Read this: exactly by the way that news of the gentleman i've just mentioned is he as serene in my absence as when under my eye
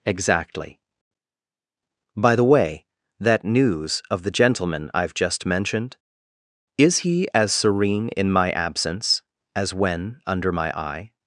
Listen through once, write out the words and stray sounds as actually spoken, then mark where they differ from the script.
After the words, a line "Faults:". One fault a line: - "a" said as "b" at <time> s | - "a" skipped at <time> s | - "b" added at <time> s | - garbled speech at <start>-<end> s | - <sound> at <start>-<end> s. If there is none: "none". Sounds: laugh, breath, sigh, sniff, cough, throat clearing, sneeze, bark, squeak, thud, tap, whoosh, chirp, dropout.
exactly by the way that news of the gentleman i've just mentioned is he as serene in my absence as when under my eye
Faults:
none